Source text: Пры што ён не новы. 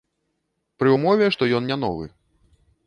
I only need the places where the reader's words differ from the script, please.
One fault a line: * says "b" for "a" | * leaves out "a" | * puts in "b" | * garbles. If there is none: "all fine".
* puts in "ўмове"